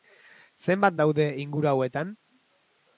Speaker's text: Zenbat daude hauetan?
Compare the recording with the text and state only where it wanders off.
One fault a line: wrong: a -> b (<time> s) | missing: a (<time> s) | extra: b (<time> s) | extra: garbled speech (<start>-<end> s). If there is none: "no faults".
extra: inguru (1.4 s)